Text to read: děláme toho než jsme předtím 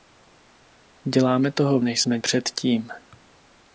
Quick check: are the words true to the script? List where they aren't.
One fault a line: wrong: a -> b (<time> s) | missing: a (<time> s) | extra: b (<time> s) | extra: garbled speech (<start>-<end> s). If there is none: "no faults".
no faults